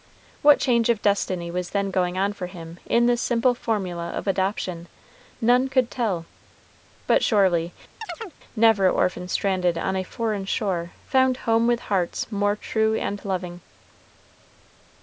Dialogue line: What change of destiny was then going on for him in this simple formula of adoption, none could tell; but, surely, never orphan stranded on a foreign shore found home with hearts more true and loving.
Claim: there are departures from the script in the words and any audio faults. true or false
true